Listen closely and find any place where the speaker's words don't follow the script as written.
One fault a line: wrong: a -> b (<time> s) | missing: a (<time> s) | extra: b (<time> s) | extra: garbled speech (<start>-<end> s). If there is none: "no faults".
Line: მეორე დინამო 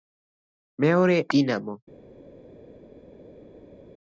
no faults